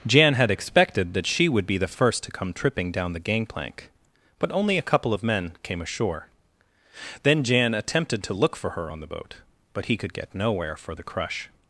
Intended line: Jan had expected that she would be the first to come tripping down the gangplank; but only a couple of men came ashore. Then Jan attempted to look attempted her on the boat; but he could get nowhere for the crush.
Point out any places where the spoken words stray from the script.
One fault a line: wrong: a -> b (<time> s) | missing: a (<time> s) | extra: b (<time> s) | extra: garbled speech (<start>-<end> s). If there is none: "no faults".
wrong: attempted -> for (8.6 s)